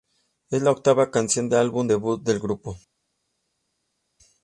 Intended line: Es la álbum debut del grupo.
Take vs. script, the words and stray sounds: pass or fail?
fail